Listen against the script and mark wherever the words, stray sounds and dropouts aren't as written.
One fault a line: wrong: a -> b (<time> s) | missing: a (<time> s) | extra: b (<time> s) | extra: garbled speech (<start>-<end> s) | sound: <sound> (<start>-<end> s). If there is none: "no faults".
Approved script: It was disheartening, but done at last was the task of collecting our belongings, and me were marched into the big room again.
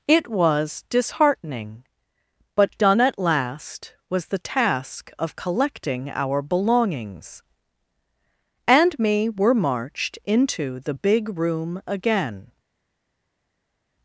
no faults